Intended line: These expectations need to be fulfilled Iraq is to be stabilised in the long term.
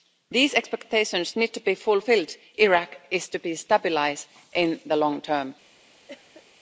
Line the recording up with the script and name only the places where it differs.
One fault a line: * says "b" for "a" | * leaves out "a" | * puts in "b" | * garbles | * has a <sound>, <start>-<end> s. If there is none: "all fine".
* has a cough, 6.1-6.4 s